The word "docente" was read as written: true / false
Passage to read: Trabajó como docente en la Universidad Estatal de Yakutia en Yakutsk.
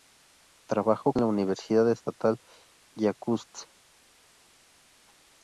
false